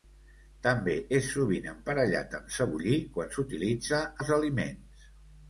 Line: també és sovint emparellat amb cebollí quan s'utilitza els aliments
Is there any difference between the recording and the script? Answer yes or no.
no